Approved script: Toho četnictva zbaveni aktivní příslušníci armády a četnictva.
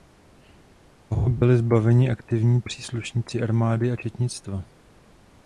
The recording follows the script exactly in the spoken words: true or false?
false